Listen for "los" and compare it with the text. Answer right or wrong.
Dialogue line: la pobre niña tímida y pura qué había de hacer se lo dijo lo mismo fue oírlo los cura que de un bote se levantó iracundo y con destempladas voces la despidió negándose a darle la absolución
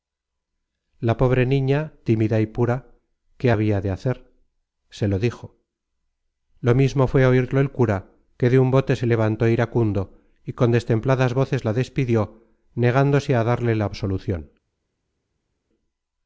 wrong